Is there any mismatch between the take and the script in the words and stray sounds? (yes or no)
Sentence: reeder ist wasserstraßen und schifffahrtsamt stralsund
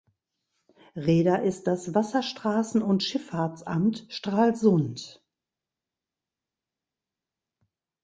yes